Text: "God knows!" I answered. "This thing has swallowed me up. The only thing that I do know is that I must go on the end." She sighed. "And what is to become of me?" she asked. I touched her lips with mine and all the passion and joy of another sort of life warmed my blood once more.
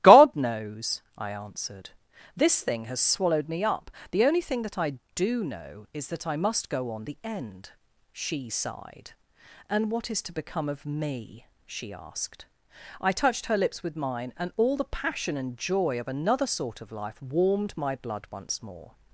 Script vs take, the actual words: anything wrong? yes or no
no